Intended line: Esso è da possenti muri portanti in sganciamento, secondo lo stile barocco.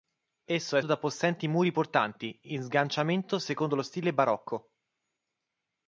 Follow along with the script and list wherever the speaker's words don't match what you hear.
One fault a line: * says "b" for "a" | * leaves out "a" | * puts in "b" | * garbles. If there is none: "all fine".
all fine